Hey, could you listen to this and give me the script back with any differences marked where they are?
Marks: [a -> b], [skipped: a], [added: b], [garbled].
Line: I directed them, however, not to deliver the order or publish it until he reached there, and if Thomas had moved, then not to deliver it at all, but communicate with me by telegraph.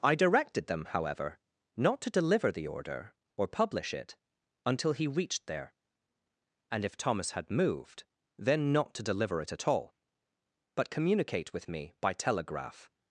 I directed them, however, not to deliver the order or publish it until he reached there, and if Thomas had moved, then not to deliver it at all, but communicate with me by telegraph.